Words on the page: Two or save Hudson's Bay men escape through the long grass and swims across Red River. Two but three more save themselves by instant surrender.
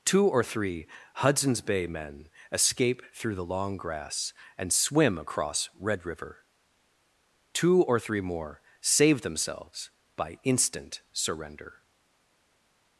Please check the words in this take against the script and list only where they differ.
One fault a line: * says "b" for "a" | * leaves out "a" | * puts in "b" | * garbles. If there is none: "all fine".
* says "three" for "save"
* says "swim" for "swims"
* says "or" for "but"